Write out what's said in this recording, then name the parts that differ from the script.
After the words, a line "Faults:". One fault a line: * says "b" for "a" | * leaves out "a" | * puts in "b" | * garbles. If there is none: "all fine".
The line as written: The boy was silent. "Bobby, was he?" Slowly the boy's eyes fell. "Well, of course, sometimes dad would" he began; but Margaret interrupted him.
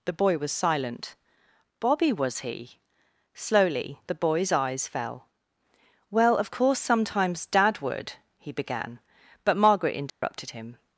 The boy was silent. "Bobby, was he?" Slowly the boy's eyes fell. "Well, of course, sometimes dad would" he began; but Margaret interrupted him.
Faults:
all fine